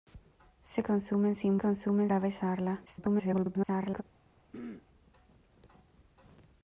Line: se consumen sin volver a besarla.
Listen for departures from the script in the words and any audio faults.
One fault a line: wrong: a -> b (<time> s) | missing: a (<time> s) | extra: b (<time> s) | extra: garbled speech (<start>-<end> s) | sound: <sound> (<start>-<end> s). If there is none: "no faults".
wrong: volver -> consumen (1.6 s)
extra: garbled speech (2.9-4.0 s)
sound: throat clearing (4.5-4.9 s)